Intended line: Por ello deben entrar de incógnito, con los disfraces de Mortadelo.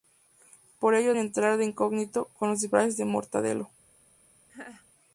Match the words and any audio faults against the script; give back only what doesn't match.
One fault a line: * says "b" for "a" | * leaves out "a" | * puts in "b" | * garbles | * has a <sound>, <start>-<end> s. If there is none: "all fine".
* leaves out "deben"
* has a laugh, 4.5-4.9 s